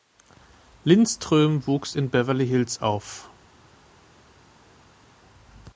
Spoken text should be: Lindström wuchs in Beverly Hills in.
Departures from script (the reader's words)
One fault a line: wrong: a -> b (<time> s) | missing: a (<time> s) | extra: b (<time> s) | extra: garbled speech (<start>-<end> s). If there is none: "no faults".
wrong: in -> auf (2.8 s)